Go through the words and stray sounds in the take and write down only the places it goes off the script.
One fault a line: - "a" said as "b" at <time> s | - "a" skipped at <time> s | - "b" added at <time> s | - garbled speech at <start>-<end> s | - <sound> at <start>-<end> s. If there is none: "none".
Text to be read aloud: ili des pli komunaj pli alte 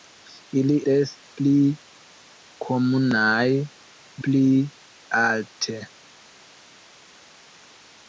none